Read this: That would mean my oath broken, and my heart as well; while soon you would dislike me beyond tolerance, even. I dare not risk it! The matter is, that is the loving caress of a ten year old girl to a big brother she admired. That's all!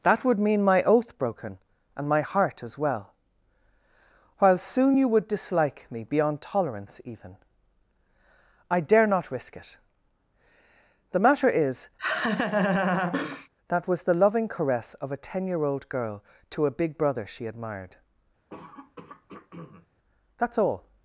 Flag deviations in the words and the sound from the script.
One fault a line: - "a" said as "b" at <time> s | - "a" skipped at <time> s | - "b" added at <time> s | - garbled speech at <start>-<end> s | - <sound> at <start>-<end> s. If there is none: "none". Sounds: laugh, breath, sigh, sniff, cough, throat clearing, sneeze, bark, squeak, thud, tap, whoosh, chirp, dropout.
- laugh at 12.0-13.5 s
- "is" said as "was" at 13.9 s
- throat clearing at 18.5-19.9 s